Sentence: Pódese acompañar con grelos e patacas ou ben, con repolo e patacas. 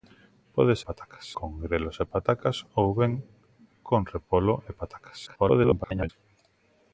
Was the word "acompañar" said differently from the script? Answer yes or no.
yes